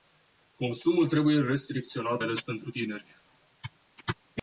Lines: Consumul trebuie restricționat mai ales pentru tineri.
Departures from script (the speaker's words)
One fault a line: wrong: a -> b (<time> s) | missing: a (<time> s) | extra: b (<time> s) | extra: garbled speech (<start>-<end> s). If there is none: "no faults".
missing: mai (2.2 s)